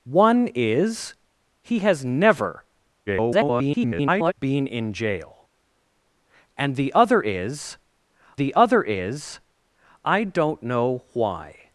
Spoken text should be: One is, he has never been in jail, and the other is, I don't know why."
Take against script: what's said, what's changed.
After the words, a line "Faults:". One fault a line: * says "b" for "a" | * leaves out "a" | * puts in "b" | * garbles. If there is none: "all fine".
One is, he has never [garbled] been in jail, and the other is the other is, I don't know why."
Faults:
* garbles
* puts in "the other is"